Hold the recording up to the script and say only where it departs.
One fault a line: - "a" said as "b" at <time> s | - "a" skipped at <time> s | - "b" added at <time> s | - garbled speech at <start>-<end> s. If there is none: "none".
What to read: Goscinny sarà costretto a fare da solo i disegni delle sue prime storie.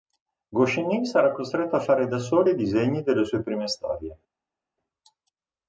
none